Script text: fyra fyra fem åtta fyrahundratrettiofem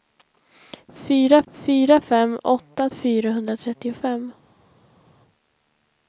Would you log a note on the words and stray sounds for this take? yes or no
no